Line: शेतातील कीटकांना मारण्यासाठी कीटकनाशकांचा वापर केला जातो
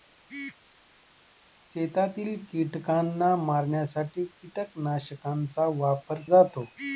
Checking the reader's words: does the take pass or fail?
fail